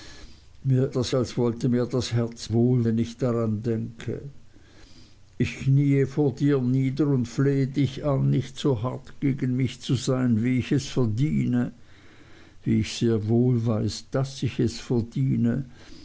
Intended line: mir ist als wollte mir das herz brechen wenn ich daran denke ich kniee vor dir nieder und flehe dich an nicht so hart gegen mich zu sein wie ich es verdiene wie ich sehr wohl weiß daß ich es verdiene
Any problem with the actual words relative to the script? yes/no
yes